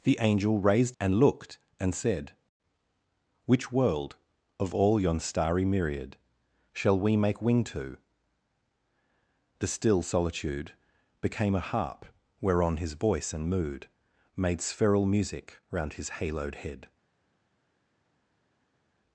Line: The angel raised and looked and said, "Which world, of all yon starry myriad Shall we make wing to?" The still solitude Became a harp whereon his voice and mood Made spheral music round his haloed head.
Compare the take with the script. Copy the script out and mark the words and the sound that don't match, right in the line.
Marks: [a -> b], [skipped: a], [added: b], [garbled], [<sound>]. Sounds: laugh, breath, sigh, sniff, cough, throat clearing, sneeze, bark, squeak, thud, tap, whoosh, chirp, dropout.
The angel raised and looked and said, "Which world, of all yon starry myriad Shall we make wing to?" The still solitude Became a harp whereon his voice and mood Made spheral music round his haloed head.